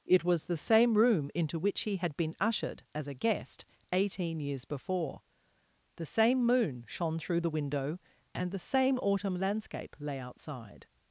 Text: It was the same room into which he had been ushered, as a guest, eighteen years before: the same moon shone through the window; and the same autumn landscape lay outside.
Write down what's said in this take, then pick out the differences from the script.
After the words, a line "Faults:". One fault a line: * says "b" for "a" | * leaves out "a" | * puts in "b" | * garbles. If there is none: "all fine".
It was the same room into which he had been ushered, as a guest, eighteen years before: the same moon shone through the window; and the same autumn landscape lay outside.
Faults:
all fine